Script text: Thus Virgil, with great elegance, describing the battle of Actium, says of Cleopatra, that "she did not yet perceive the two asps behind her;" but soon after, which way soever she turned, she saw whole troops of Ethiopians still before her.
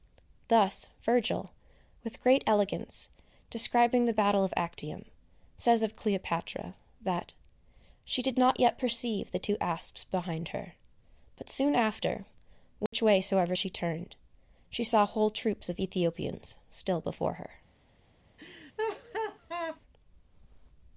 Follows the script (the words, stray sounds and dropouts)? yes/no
no